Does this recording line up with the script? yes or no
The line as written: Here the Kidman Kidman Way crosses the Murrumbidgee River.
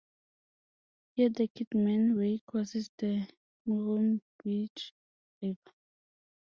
no